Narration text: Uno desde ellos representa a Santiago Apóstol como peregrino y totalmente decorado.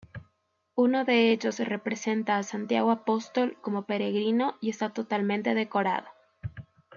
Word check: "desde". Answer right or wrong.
wrong